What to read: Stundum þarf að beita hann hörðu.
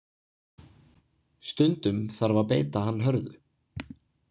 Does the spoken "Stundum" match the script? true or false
true